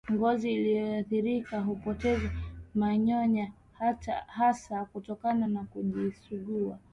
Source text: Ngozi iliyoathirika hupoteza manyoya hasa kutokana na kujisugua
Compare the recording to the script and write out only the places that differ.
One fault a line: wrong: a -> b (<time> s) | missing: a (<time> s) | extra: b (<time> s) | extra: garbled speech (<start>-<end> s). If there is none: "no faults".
no faults